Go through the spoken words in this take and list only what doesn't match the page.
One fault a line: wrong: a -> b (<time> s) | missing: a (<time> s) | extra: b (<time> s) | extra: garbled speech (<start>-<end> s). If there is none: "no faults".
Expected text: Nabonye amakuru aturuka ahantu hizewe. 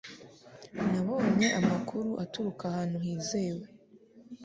no faults